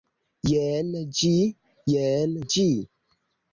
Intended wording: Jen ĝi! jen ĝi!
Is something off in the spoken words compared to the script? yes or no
no